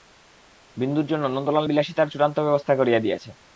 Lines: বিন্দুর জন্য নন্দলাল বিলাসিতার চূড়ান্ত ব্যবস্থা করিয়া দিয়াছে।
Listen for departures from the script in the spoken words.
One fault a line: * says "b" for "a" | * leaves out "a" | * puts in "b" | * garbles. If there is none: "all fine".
all fine